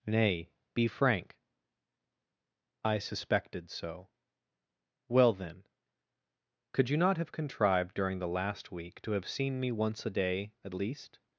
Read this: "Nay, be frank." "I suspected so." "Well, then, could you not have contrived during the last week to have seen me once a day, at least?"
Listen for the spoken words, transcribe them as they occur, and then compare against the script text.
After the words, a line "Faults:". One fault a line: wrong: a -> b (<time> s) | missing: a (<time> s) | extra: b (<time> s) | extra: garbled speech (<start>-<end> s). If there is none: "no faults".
"Nay, be frank." "I suspected so." "Well, then, could you not have contrived during the last week to have seen me once a day, at least?"
Faults:
no faults